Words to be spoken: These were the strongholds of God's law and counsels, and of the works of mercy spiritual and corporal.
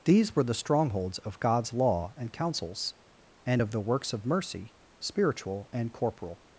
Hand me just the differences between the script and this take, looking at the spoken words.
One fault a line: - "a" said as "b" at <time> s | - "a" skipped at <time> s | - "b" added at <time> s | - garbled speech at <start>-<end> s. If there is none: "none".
none